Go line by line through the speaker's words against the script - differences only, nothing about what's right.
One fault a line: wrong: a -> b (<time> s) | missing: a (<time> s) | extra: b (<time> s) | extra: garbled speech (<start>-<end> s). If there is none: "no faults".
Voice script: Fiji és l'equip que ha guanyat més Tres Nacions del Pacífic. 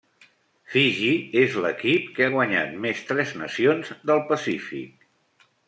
no faults